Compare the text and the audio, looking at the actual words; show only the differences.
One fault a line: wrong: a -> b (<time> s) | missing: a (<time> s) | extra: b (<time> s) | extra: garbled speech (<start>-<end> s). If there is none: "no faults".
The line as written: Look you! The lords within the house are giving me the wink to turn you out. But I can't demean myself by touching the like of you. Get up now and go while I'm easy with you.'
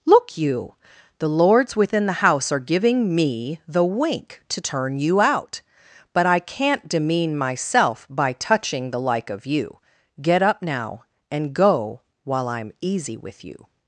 no faults